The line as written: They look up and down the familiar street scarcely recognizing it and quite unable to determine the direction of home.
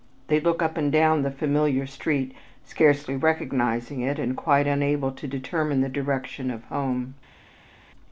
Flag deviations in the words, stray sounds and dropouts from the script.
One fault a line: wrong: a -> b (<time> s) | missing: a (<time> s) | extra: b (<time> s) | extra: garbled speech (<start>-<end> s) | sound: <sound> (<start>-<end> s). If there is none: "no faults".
no faults